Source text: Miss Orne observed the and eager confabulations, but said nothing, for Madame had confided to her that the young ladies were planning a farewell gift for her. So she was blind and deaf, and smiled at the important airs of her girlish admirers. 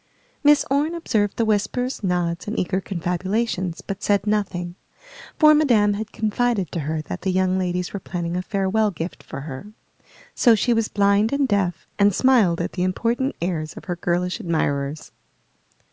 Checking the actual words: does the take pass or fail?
fail